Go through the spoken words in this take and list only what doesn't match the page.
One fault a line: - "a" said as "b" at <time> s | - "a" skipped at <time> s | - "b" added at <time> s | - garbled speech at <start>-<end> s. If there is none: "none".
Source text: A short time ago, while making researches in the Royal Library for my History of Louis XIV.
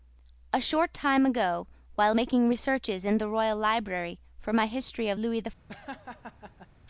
none